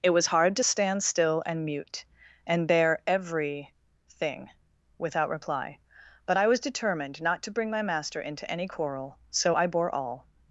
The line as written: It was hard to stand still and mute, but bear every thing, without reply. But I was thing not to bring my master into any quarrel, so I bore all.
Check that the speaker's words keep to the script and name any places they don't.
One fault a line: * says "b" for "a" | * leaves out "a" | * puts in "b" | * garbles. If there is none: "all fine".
* says "and" for "but"
* says "determined" for "thing"